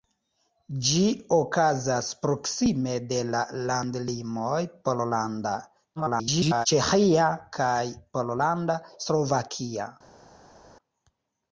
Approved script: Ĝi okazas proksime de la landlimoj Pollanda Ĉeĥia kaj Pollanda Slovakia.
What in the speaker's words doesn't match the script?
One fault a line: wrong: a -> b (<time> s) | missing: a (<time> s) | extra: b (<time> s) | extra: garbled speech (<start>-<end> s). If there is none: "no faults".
extra: garbled speech (6.0-6.7 s)